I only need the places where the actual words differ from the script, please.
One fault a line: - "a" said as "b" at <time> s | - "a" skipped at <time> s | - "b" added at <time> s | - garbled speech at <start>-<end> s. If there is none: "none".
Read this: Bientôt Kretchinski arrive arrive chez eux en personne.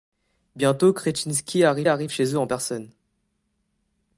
none